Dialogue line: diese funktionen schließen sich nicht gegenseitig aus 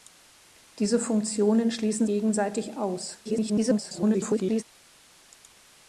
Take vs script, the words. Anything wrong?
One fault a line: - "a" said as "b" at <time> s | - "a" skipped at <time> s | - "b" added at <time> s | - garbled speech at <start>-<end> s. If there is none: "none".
- "sich nicht" skipped at 2.1 s
- garbled speech at 3.2-4.6 s